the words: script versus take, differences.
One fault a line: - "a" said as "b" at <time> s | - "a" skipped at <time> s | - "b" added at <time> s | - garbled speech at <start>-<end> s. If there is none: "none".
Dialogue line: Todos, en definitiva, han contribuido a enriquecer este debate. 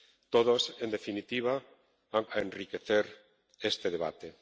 - "contribuido" skipped at 2.2 s